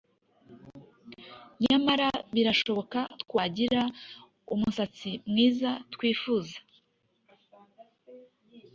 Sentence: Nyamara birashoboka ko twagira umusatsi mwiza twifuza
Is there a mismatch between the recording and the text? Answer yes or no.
yes